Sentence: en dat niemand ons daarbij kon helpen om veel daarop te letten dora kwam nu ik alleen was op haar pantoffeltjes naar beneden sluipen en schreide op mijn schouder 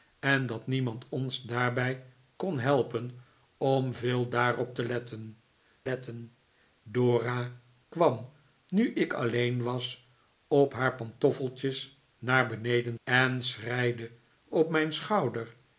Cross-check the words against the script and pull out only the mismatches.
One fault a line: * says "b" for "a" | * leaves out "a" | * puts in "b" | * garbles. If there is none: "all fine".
* puts in "letten"
* leaves out "sluipen"